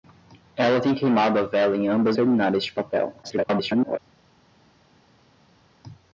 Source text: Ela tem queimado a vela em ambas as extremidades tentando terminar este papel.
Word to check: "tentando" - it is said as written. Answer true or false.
false